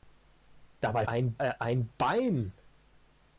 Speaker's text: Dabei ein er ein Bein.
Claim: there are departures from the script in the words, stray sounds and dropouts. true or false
false